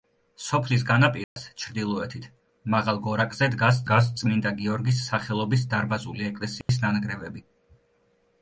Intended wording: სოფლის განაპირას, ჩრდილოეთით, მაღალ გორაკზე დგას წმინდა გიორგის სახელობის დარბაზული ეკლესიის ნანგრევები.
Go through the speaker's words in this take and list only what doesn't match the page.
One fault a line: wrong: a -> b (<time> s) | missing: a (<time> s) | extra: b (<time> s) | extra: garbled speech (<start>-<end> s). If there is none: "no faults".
extra: დგას (3.9 s)